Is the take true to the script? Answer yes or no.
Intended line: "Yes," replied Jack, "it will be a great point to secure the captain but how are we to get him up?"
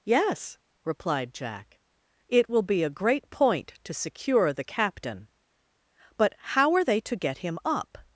no